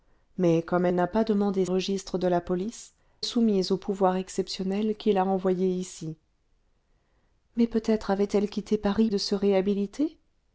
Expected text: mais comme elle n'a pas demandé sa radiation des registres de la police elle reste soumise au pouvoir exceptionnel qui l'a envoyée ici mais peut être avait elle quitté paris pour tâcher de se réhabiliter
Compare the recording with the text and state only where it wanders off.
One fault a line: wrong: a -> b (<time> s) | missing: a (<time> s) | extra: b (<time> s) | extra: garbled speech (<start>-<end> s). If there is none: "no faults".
missing: sa radiation des (1.6 s)
missing: elle reste (2.9 s)
missing: pour tâcher (9.1 s)